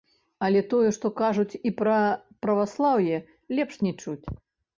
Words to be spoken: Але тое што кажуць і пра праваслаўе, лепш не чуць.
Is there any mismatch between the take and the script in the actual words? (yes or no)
no